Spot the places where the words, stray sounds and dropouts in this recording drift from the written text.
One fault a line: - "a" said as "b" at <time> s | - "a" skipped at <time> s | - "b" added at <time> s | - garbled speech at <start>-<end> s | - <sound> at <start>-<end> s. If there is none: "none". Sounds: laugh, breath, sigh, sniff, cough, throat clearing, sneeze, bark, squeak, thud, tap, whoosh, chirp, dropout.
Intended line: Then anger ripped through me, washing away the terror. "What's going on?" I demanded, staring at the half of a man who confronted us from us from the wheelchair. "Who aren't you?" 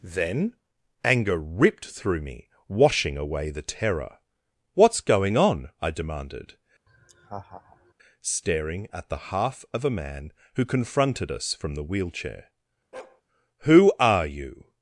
- laugh at 6.9-7.9 s
- "us from" skipped at 11.7 s
- bark at 12.9-13.2 s
- "aren't" said as "are" at 14.0 s